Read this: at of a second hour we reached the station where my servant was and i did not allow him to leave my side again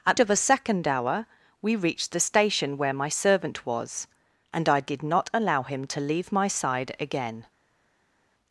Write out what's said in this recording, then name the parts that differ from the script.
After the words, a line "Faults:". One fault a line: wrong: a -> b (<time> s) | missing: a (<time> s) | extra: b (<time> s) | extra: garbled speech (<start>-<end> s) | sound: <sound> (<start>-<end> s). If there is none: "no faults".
at of a second hour we reached the station where my servant was and i did not allow him to leave my side again
Faults:
no faults